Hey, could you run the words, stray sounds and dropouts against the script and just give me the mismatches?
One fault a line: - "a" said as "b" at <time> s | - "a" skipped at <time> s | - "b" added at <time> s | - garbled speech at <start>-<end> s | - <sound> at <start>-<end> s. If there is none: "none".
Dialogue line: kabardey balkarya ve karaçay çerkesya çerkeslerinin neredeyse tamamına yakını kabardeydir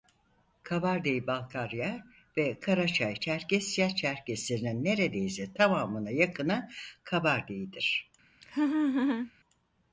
- laugh at 8.4-9.3 s